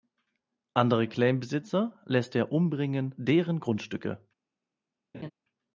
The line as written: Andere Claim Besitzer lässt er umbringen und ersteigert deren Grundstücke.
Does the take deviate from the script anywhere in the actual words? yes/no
yes